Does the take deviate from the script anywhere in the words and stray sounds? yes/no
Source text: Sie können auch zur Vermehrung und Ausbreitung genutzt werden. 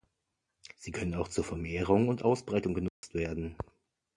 yes